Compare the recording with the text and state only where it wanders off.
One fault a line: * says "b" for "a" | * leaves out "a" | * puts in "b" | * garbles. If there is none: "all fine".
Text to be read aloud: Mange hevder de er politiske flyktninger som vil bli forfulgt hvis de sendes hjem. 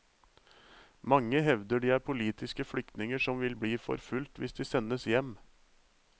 all fine